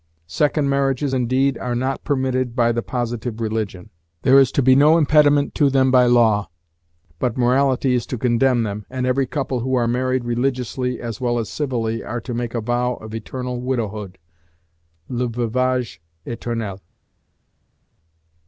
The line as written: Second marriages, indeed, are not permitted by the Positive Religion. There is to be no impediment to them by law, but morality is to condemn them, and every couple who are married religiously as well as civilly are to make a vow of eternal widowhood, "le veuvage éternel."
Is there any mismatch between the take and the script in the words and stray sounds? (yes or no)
no